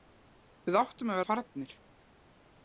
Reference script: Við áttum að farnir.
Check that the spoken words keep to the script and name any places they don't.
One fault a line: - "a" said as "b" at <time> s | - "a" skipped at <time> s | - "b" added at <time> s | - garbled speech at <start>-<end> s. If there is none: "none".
none